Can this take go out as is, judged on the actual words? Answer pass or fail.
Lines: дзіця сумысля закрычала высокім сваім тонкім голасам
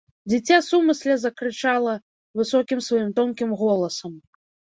pass